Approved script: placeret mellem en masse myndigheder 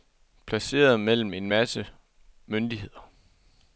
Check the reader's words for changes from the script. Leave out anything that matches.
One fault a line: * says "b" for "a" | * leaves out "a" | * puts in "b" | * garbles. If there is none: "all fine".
all fine